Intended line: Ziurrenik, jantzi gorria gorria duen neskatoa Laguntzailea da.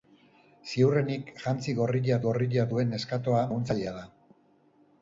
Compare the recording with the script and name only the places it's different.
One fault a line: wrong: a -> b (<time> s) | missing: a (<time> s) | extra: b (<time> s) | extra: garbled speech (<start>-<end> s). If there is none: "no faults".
no faults